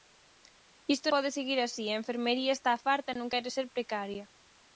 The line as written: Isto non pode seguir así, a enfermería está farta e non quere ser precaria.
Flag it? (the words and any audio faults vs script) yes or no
yes